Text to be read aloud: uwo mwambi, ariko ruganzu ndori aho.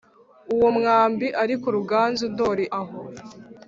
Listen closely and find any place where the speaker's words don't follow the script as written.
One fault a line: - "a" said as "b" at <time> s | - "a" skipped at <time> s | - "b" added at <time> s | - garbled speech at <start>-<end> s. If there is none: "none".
none